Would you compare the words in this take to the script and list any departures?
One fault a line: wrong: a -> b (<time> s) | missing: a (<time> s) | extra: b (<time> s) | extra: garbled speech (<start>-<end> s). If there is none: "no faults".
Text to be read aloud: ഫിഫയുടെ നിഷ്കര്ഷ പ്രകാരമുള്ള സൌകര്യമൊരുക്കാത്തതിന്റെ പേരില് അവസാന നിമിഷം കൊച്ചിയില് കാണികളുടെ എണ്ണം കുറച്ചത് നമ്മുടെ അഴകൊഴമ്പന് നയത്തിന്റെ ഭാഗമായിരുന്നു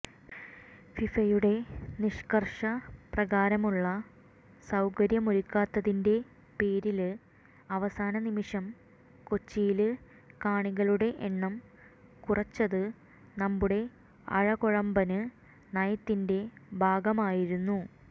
no faults